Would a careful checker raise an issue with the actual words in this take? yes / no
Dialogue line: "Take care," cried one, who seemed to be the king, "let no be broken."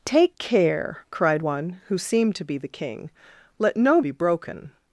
no